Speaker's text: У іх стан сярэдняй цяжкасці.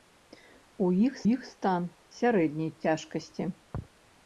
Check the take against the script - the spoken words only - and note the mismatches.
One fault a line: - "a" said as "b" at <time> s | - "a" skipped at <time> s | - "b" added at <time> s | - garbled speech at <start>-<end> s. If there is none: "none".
- "іх" added at 1.3 s